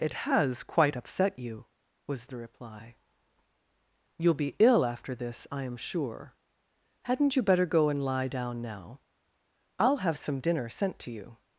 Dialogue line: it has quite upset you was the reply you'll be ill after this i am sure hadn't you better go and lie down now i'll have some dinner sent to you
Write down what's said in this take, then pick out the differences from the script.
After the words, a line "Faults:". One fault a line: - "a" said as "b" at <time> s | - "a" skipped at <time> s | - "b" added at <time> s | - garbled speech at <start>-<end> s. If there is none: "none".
it has quite upset you was the reply you'll be ill after this i am sure hadn't you better go and lie down now i'll have some dinner sent to you
Faults:
none